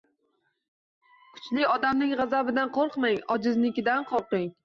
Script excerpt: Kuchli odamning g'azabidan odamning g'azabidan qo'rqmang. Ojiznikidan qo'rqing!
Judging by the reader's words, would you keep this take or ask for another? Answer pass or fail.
fail